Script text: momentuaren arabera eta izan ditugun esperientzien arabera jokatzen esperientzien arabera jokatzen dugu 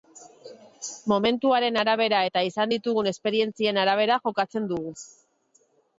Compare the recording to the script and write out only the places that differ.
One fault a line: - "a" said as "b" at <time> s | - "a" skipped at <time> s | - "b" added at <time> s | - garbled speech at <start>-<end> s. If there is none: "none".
- "esperientzien arabera jokatzen" skipped at 4.7 s